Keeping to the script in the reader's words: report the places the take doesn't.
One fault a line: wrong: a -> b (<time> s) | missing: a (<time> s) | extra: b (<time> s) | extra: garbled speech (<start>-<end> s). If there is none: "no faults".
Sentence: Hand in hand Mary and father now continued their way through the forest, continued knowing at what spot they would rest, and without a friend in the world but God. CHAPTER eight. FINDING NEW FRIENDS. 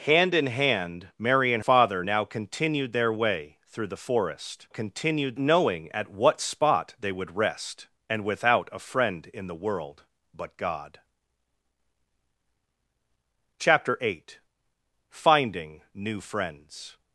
no faults